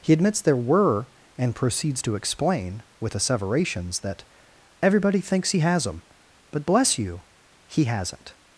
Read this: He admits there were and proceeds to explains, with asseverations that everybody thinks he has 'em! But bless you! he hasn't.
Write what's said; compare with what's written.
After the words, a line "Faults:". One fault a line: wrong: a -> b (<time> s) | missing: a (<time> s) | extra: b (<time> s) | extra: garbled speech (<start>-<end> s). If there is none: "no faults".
He admits there were and proceeds to explain, with asseverations that everybody thinks he has 'em! But bless you! he hasn't.
Faults:
wrong: explains -> explain (2.1 s)